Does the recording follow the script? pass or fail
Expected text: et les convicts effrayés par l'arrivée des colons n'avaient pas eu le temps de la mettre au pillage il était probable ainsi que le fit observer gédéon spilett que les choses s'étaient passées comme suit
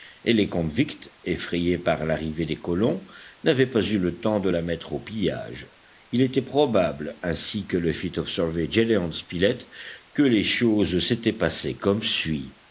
pass